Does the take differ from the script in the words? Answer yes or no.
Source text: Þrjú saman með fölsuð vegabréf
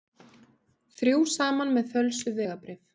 no